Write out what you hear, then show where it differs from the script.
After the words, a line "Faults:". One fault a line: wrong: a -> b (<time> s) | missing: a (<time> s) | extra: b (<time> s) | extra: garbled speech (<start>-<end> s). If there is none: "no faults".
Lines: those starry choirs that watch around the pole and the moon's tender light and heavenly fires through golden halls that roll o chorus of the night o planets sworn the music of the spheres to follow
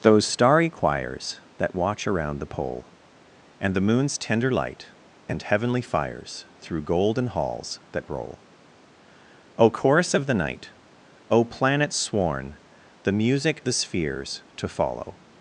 those starry choirs that watch around the pole and the moon's tender light and heavenly fires through golden halls that roll o chorus of the night o planets sworn the music the spheres to follow
Faults:
missing: of (13.6 s)